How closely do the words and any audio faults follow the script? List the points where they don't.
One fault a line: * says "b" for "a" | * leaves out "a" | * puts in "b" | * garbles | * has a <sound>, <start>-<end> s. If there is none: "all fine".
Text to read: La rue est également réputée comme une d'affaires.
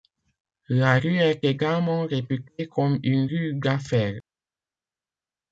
* puts in "rue"